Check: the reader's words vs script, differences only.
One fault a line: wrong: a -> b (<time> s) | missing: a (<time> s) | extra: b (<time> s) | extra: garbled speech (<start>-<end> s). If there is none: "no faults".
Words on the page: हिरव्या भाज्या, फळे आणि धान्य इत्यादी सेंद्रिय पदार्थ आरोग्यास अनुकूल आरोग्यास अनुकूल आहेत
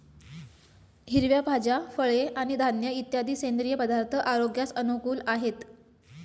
missing: आरोग्यास अनुकूल (5.2 s)